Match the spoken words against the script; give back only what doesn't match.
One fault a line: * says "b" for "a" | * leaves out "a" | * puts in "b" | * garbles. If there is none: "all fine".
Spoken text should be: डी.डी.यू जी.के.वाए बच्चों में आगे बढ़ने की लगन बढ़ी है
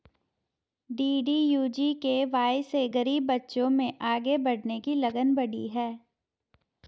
* puts in "से गरीब"